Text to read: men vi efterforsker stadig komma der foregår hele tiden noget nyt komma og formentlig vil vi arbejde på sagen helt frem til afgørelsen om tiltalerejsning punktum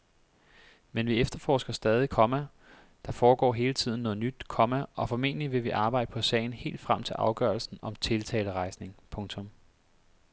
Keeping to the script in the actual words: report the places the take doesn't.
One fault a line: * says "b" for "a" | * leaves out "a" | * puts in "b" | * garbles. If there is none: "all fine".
all fine